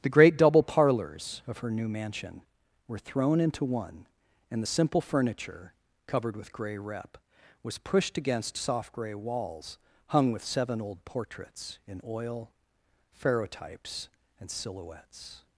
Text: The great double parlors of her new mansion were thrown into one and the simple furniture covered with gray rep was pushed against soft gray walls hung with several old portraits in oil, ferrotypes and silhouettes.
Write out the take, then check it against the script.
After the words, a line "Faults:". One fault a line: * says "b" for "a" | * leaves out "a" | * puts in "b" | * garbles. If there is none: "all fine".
The great double parlors of her new mansion were thrown into one and the simple furniture covered with gray rep was pushed against soft gray walls hung with seven old portraits in oil, ferrotypes and silhouettes.
Faults:
* says "seven" for "several"